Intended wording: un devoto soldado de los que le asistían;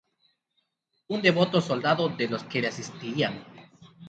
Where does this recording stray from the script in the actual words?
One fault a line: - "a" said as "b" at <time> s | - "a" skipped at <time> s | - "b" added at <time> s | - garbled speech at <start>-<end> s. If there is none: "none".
none